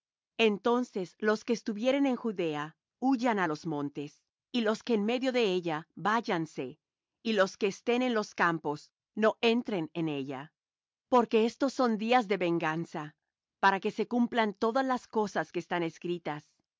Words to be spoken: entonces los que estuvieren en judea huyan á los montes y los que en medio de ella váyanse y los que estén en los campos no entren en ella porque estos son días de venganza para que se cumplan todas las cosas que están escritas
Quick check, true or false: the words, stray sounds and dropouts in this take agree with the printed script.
true